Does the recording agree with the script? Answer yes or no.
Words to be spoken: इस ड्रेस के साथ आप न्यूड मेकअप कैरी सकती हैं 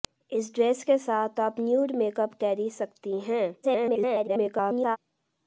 no